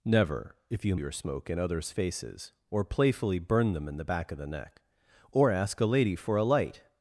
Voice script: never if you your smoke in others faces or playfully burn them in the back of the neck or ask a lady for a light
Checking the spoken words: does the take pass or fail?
pass